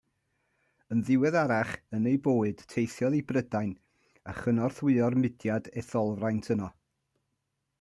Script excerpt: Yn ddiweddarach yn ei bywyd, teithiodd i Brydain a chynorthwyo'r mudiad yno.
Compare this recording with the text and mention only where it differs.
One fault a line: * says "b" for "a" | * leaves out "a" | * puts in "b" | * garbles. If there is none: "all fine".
* puts in "etholfraint"